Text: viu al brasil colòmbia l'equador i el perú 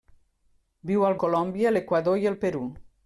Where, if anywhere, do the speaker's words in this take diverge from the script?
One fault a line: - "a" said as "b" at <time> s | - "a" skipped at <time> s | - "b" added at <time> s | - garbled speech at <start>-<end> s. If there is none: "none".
- "brasil" skipped at 1.2 s